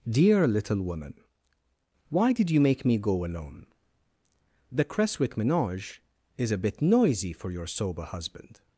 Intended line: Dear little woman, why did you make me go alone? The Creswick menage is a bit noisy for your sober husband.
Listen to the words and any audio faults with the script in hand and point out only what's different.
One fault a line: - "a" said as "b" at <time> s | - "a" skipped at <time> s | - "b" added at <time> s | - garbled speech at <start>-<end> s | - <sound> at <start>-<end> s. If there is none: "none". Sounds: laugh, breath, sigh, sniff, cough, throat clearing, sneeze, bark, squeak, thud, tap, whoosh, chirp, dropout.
none